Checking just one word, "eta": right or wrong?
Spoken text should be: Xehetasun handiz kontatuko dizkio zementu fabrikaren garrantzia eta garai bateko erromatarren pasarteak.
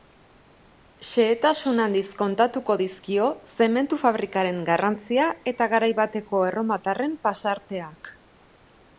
right